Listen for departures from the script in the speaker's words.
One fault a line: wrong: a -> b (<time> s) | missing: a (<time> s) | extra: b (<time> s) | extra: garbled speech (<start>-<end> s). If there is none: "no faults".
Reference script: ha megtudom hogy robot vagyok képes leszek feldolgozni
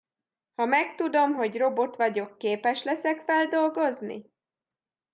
no faults